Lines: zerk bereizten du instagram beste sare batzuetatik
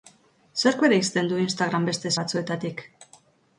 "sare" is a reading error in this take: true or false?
true